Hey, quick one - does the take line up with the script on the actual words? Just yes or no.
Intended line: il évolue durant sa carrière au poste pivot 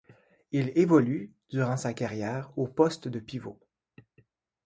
no